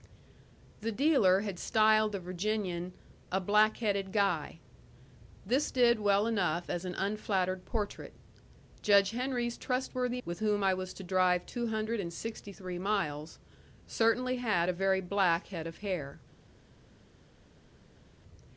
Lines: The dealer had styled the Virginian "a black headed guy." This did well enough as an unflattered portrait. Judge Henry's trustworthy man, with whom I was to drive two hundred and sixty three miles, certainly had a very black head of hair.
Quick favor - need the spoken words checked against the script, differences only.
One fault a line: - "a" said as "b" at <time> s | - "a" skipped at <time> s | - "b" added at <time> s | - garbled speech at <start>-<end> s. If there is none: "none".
- "man" skipped at 10.2 s